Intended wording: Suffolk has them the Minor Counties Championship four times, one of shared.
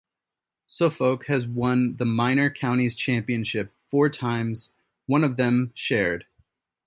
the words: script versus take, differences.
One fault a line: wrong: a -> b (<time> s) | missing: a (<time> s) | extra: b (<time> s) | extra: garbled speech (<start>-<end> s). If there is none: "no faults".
wrong: them -> won (1.4 s)
extra: them (5.4 s)